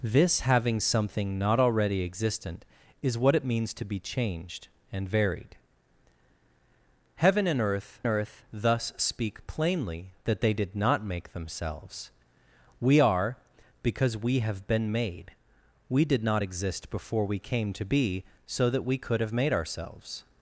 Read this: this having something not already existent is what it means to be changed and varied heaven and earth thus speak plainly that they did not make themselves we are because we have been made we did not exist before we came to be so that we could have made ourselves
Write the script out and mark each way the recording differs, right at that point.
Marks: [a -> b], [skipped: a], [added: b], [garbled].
this having something not already existent is what it means to be changed and varied heaven and earth [added: earth] thus speak plainly that they did not make themselves we are because we have been made we did not exist before we came to be so that we could have made ourselves